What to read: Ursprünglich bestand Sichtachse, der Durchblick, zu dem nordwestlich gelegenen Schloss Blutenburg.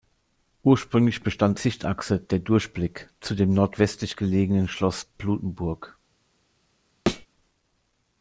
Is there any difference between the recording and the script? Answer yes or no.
no